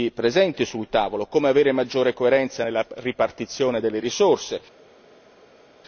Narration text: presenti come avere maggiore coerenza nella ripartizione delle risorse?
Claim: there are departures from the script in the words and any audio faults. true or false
true